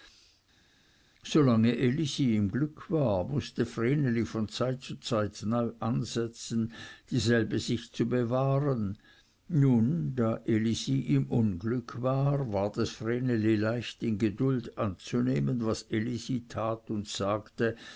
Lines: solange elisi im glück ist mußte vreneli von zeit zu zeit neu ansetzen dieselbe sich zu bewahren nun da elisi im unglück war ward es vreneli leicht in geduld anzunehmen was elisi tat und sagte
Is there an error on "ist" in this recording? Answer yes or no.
yes